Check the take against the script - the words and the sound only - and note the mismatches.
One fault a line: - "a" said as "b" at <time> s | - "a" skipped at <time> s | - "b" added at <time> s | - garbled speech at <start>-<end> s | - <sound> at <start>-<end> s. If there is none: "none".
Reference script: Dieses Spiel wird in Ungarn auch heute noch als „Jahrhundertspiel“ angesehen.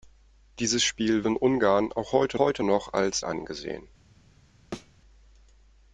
- "wird" skipped at 1.2 s
- "heute" added at 2.4 s
- "Jahrhundertspiel" skipped at 3.2 s
- thud at 4.7-4.9 s